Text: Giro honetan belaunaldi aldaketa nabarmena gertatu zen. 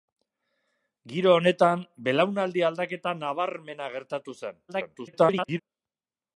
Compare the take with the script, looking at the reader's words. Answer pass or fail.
fail